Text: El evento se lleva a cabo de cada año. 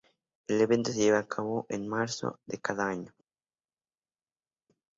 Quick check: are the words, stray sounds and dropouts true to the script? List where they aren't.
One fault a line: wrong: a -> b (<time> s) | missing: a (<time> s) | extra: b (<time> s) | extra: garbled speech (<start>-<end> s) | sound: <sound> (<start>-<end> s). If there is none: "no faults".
extra: en marzo (1.7 s)